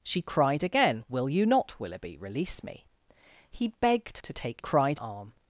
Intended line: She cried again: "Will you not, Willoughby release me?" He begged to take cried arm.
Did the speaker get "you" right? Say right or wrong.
right